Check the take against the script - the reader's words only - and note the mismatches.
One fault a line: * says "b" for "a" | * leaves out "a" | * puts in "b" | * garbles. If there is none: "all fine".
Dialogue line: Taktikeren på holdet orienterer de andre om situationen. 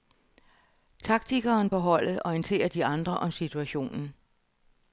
all fine